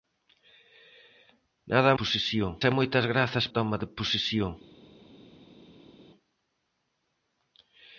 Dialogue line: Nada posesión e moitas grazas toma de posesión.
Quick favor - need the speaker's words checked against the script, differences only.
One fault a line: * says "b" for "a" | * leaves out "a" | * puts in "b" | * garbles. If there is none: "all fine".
all fine